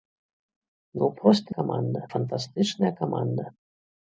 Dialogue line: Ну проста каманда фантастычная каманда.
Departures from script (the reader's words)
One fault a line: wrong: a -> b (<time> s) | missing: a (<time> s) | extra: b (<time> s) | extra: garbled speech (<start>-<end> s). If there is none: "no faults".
no faults